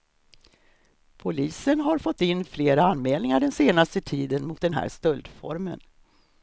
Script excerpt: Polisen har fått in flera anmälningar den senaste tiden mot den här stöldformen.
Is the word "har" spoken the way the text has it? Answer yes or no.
yes